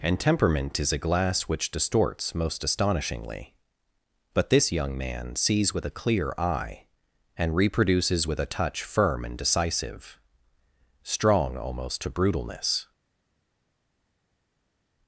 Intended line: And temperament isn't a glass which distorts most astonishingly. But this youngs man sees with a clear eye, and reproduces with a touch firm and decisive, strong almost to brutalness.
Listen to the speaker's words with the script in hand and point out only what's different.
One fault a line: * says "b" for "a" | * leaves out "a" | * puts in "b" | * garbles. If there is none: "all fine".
* says "is" for "isn't"
* says "young" for "youngs"